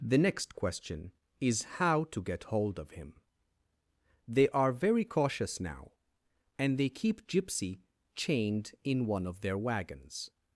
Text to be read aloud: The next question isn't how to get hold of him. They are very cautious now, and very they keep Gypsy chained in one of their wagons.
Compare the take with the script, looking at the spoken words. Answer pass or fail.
fail